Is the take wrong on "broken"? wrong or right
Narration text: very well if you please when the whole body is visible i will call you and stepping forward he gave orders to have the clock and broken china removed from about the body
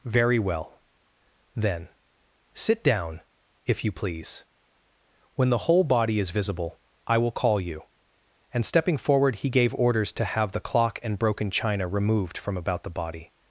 right